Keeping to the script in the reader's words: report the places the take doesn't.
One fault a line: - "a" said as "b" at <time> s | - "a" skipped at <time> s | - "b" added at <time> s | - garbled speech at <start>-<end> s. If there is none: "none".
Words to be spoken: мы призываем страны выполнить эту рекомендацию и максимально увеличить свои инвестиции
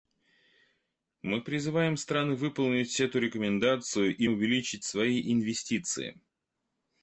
- "максимально" skipped at 4.3 s